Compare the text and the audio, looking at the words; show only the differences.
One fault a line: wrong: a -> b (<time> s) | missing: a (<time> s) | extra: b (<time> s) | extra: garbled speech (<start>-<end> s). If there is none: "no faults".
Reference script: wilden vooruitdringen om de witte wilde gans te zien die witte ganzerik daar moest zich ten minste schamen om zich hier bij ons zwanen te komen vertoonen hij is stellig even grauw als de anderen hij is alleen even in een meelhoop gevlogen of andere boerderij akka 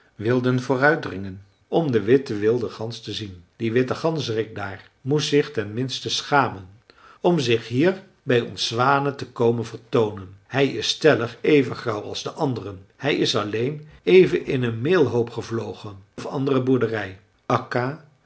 no faults